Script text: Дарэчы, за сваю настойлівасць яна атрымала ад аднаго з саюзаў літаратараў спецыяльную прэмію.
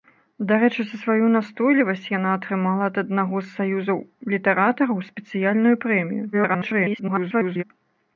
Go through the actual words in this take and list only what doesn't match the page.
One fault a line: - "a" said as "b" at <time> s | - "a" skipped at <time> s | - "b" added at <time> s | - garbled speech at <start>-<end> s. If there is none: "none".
- garbled speech at 6.3-7.6 s